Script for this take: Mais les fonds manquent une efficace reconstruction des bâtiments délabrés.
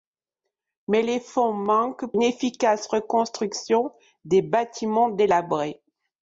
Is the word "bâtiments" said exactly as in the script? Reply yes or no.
yes